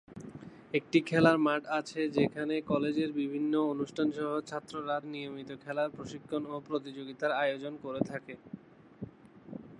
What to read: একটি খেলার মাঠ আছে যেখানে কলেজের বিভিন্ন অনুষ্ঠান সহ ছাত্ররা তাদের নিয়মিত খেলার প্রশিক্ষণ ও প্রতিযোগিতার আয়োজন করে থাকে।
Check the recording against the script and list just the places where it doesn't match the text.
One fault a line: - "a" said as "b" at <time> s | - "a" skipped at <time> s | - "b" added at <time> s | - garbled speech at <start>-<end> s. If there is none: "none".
- "তাদের" skipped at 5.0 s